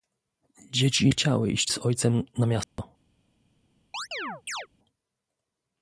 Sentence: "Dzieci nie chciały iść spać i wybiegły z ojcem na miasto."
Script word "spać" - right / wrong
wrong